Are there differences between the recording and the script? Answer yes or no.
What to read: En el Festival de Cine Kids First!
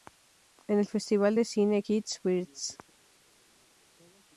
no